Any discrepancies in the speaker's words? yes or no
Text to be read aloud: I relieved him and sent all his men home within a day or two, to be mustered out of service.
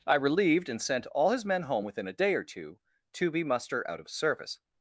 yes